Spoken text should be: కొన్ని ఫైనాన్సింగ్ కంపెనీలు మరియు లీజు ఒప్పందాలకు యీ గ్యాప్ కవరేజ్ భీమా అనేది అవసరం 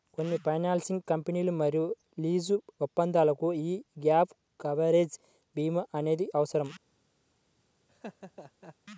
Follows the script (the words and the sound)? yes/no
no